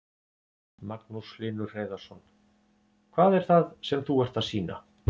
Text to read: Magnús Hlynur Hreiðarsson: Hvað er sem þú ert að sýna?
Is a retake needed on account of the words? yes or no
yes